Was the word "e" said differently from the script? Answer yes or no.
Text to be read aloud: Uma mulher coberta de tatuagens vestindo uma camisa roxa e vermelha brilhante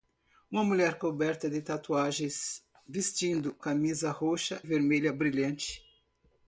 yes